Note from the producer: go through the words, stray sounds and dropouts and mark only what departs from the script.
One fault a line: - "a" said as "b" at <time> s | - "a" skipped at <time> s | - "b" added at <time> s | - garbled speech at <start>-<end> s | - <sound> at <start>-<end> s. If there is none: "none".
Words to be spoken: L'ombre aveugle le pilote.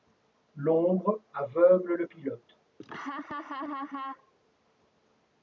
- laugh at 2.8-4.3 s